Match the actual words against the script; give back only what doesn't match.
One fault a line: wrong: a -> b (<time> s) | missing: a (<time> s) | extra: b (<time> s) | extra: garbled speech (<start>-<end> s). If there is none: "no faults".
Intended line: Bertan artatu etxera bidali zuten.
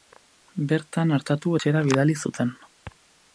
no faults